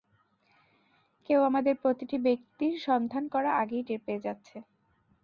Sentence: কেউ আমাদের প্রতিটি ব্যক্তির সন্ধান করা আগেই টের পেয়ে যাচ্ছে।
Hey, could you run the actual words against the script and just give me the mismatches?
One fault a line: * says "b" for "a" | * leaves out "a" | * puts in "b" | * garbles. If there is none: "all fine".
all fine